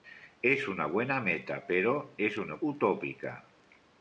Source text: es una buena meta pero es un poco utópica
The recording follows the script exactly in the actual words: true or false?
false